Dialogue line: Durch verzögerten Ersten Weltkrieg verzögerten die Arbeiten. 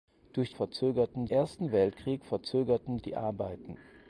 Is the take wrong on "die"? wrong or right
right